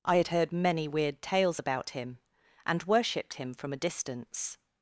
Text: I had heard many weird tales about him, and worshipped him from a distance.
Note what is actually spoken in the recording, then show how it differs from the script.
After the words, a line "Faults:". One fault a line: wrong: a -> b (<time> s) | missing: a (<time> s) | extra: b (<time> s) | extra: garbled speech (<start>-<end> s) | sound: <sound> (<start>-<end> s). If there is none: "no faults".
I had heard many weird tales about him, and worshipped him from a distance.
Faults:
no faults